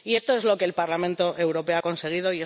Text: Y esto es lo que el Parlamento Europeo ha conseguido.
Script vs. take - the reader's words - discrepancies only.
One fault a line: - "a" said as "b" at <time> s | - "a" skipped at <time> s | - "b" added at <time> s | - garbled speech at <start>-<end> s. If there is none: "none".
none